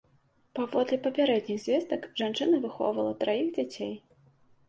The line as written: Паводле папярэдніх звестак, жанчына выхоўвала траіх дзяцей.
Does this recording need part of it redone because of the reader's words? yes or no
no